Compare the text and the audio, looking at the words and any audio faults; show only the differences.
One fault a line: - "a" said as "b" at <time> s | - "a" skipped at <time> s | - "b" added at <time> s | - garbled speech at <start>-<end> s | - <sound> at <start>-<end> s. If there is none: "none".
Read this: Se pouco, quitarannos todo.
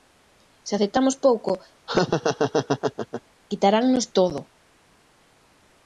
- "aceptamos" added at 0.7 s
- laugh at 1.9-3.2 s